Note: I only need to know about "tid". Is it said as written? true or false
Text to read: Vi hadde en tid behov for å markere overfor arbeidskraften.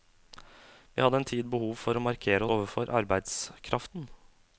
true